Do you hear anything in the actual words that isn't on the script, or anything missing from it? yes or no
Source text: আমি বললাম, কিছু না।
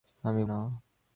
yes